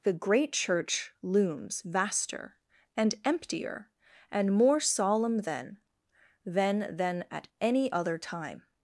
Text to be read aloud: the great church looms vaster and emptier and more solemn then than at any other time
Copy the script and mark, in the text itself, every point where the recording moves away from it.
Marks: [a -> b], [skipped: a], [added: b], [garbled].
the great church looms vaster and emptier and more solemn then [added: then] than at any other time